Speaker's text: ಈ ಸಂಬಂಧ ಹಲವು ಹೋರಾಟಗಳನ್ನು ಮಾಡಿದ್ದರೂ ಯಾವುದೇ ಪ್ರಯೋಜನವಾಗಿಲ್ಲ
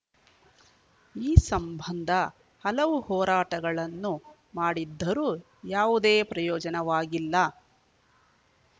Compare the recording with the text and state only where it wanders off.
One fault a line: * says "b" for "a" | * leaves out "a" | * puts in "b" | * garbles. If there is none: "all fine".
all fine